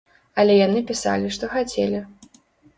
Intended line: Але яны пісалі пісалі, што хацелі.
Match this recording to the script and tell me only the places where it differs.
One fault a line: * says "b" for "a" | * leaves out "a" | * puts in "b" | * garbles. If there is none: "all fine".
* leaves out "пісалі"